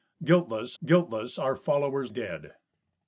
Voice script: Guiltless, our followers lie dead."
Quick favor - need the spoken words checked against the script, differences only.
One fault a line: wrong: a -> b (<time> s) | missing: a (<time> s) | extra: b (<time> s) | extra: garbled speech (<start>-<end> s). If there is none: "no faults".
extra: guiltless (0.8 s)
missing: lie (2.1 s)